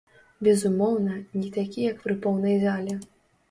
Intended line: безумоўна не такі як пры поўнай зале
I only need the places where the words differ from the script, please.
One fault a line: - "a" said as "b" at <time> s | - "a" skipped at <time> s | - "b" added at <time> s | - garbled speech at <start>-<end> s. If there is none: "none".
none